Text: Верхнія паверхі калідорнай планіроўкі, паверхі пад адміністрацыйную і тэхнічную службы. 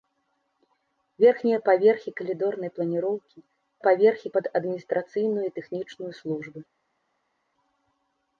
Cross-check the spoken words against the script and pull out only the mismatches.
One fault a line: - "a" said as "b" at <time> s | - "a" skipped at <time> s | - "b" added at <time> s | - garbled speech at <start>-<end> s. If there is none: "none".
none